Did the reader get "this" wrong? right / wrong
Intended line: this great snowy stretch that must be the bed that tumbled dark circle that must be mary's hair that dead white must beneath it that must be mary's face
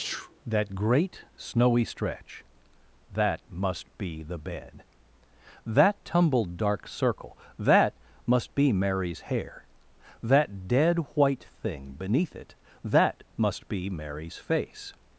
wrong